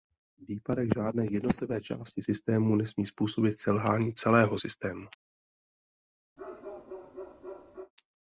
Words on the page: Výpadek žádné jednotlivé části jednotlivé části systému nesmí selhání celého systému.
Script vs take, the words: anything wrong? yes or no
yes